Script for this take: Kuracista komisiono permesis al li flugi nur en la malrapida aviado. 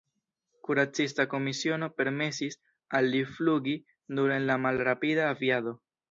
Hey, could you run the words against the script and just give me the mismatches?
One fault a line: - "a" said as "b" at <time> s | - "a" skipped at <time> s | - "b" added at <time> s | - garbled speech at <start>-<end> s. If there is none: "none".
none